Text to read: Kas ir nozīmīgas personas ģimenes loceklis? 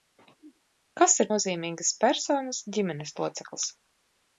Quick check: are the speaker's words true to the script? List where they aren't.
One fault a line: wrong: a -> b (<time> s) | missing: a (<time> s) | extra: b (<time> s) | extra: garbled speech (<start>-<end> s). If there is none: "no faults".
no faults